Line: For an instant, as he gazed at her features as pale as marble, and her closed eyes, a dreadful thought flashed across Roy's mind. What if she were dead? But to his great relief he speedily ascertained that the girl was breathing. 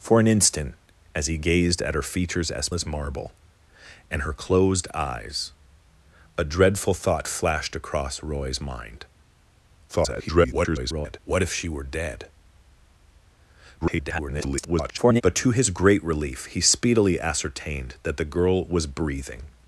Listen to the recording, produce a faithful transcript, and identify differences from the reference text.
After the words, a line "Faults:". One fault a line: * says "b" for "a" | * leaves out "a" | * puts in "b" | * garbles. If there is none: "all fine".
For an instant, as he gazed at her features as as marble, and her closed eyes, a dreadful thought flashed across Roy's mind. [garbled] What if she were dead? [garbled] But to his great relief he speedily ascertained that the girl was breathing.
Faults:
* leaves out "pale"
* garbles
* garbles